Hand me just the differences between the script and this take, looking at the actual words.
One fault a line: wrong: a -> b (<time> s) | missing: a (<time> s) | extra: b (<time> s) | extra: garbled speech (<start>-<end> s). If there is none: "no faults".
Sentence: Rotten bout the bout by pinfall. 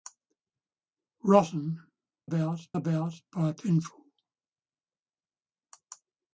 no faults